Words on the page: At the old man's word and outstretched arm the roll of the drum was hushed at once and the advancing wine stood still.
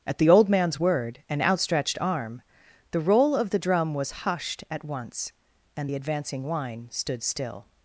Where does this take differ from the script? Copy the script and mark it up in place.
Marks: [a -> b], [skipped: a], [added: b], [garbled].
At the old man's word and outstretched arm the roll of the drum was hushed at once and the advancing wine stood still.